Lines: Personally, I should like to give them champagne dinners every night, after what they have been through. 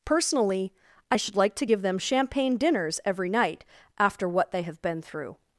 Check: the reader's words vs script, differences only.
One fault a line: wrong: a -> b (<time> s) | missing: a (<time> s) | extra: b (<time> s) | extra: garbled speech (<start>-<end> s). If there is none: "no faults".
no faults